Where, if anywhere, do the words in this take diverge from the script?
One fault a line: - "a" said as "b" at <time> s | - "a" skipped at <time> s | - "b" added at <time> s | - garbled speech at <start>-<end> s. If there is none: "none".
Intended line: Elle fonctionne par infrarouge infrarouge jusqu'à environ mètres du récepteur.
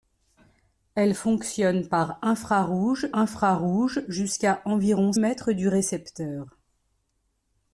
none